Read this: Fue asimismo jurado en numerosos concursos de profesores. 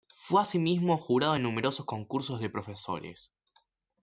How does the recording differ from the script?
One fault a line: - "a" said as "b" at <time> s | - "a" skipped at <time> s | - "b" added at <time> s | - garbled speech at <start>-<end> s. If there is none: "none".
none